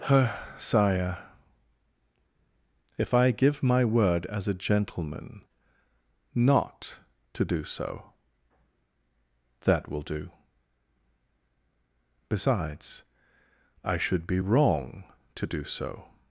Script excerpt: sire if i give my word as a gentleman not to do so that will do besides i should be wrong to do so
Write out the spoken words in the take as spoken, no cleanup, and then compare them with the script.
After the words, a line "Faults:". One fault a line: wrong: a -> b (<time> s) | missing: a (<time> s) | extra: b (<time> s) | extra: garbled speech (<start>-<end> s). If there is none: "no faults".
sire if i give my word as a gentleman not to do so that will do besides i should be wrong to do so
Faults:
no faults